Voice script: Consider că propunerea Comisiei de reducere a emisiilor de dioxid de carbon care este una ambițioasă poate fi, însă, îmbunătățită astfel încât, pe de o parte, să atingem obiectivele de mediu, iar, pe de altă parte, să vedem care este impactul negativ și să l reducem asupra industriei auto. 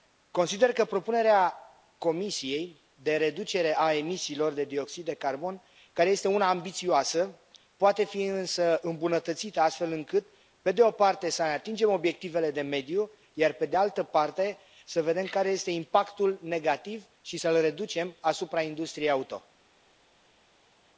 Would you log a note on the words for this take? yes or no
no